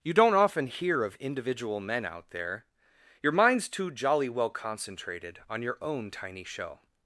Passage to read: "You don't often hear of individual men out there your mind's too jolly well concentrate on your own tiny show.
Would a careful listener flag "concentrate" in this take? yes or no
yes